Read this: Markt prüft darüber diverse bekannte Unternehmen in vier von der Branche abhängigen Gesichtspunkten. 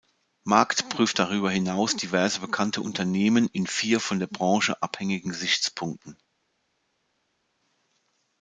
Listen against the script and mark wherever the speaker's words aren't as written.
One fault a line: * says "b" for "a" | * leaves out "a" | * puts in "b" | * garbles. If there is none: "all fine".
* puts in "hinaus"